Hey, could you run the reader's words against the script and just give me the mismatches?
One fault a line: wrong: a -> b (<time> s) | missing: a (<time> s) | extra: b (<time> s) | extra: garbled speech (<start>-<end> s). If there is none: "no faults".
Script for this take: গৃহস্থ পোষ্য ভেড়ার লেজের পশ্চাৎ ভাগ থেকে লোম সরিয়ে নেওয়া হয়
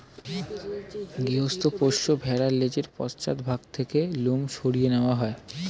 no faults